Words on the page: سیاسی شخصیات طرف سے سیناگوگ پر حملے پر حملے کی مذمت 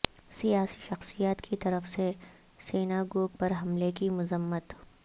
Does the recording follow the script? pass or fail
fail